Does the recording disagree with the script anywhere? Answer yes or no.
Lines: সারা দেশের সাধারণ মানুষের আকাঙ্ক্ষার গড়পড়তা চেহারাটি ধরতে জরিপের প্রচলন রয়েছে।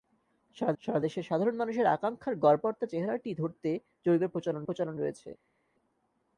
yes